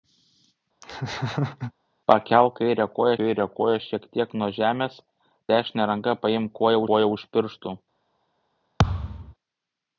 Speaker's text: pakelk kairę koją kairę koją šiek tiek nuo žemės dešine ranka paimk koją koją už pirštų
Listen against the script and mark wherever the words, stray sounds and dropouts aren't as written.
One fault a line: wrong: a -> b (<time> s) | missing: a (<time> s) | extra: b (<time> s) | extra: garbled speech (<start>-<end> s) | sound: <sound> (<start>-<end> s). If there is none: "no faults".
sound: laugh (0.8-1.7 s)
sound: thud (8.8-9.3 s)